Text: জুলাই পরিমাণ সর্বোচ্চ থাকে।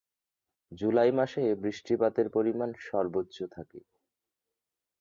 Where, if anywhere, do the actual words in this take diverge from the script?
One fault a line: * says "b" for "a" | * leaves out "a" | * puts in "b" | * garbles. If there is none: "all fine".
* puts in "মাসে বৃষ্টিপাতের"